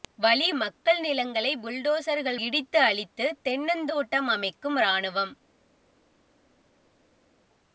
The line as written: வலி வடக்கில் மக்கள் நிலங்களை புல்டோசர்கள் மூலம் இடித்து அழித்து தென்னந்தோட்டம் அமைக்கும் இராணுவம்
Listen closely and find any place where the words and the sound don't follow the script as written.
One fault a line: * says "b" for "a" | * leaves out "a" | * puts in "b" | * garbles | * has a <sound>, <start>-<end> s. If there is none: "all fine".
* leaves out "வடக்கில்"
* leaves out "மூலம்"